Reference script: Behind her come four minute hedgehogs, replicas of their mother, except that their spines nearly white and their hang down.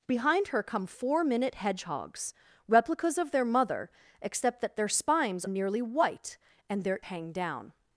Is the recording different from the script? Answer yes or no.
no